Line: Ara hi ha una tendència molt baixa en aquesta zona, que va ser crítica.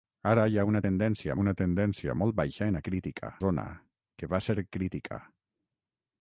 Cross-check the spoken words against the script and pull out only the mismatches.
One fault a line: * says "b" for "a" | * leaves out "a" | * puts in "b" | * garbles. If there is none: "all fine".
* puts in "una tendència"
* says "crítica" for "aquesta"